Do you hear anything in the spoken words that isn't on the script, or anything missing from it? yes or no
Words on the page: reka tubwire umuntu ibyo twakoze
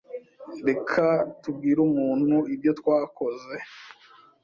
no